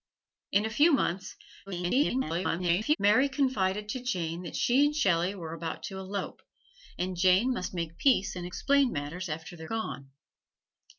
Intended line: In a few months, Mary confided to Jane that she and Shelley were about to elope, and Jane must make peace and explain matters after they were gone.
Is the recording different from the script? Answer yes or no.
yes